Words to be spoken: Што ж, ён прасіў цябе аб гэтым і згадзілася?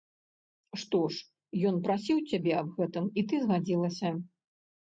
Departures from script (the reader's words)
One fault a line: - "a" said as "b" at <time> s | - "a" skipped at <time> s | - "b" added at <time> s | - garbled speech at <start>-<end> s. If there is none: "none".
- "ты" added at 3.3 s